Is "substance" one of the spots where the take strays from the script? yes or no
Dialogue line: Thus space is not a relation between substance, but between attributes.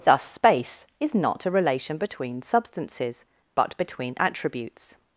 yes